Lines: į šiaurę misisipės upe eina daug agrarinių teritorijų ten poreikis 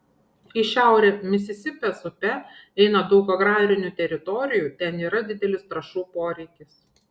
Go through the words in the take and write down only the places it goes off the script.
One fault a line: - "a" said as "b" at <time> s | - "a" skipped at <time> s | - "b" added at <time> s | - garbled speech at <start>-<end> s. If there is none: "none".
- "yra didelis trąšų" added at 5.1 s